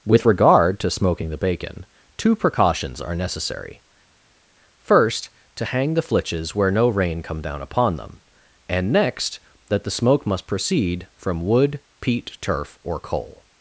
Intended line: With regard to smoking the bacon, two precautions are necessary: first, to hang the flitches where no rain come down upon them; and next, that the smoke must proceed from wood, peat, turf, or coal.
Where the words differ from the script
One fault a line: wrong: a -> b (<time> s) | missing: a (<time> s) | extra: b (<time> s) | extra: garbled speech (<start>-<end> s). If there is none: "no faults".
no faults